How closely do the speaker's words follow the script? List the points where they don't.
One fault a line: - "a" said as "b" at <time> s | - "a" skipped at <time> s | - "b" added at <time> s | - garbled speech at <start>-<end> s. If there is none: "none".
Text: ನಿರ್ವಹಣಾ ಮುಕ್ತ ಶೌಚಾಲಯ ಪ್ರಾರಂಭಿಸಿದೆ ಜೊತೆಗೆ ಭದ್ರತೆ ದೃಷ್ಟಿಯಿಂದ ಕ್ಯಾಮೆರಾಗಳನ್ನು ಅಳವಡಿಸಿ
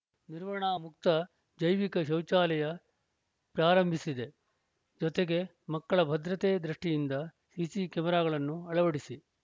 - "ಜೈವಿಕ" added at 1.6 s
- "ಮಕ್ಕಳ" added at 5.7 s
- "ಸಿಸಿ" added at 7.5 s